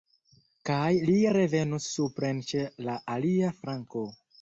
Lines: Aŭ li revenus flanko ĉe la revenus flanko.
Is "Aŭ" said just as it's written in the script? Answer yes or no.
no